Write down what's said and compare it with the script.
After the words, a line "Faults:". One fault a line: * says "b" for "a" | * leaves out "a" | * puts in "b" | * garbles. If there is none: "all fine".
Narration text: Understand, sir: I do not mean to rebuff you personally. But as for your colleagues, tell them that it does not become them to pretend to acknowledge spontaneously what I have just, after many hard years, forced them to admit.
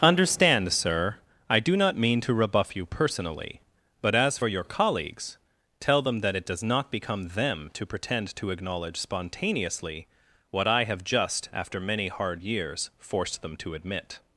Understand, sir: I do not mean to rebuff you personally. But as for your colleagues, tell them that it does not become them to pretend to acknowledge spontaneously what I have just, after many hard years, forced them to admit.
Faults:
all fine